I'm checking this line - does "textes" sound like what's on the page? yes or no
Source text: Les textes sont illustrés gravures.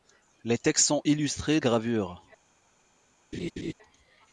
yes